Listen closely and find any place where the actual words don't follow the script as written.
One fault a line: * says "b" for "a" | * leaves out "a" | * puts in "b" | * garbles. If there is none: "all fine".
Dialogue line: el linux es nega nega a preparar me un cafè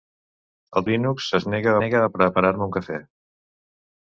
all fine